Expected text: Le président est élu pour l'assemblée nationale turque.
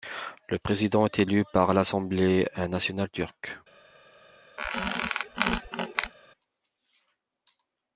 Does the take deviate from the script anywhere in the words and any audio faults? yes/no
yes